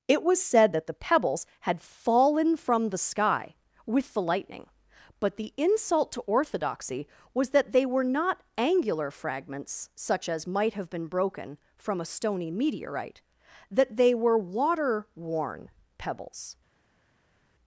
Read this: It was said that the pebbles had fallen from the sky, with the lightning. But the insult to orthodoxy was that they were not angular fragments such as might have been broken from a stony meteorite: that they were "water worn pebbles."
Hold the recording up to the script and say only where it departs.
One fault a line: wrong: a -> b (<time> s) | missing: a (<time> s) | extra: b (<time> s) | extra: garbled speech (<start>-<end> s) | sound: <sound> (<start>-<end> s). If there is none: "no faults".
no faults